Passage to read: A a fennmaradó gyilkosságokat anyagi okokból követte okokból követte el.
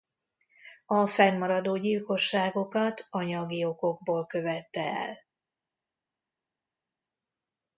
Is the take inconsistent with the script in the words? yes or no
yes